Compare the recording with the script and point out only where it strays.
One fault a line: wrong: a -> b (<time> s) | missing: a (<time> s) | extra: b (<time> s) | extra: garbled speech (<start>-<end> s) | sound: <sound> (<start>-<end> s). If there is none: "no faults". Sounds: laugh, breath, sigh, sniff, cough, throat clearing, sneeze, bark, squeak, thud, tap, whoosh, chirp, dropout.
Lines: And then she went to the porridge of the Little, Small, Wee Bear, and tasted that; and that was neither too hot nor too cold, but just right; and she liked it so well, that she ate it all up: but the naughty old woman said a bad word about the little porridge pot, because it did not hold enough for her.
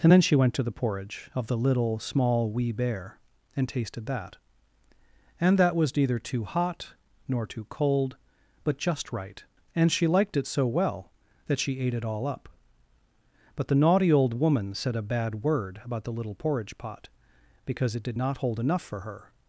no faults